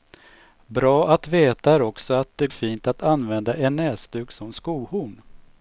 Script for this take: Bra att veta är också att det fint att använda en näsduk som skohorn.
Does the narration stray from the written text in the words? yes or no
no